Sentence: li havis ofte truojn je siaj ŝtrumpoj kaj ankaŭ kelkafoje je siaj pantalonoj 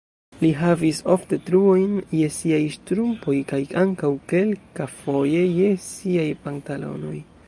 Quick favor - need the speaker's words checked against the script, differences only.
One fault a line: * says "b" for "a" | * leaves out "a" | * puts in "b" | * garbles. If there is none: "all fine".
all fine